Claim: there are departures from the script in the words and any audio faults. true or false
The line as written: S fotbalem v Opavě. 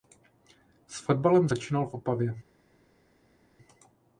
true